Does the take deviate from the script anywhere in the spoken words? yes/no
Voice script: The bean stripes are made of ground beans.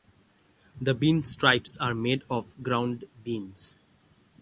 no